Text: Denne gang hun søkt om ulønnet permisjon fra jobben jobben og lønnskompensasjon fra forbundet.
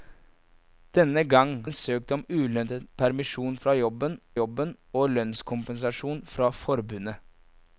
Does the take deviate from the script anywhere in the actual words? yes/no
no